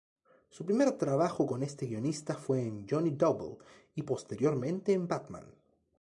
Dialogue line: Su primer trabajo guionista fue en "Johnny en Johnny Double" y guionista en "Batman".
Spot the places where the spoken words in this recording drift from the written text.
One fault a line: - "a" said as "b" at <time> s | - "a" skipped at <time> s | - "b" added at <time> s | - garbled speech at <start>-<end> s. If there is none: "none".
- "con este" added at 1.4 s
- "en Johnny" skipped at 3.1 s
- "guionista" said as "posteriormente" at 4.0 s